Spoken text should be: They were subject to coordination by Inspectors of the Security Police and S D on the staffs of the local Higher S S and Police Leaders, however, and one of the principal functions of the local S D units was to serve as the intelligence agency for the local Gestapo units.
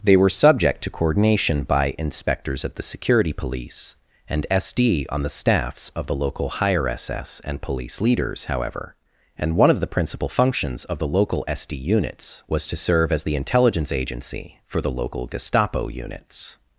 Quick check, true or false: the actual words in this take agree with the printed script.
true